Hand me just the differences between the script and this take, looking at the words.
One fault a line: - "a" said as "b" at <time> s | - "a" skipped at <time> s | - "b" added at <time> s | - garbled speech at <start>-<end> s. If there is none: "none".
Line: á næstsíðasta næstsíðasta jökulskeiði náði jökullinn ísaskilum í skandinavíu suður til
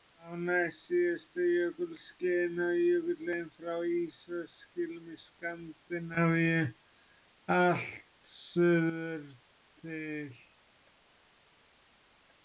- "næstsíðasta" skipped at 1.4 s
- "frá" added at 3.6 s
- "allt" added at 7.6 s